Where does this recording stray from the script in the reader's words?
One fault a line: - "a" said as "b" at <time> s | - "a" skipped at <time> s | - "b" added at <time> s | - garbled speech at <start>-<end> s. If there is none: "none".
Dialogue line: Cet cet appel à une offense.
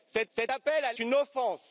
none